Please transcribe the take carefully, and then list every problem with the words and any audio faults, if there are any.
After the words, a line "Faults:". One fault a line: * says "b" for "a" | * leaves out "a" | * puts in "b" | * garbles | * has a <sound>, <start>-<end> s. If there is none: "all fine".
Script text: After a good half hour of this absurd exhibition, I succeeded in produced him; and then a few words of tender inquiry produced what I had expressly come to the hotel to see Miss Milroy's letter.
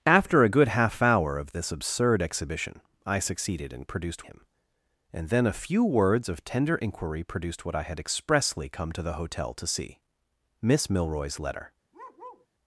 After a good half hour of this absurd exhibition, I succeeded in produced him; and then a few words of tender inquiry produced what I had expressly come to the hotel to see Miss Milroy's letter.
Faults:
* has a bark, 11.9-12.5 s